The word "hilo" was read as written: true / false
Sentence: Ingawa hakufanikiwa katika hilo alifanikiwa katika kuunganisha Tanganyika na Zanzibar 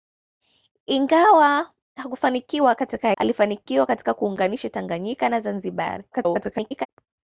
false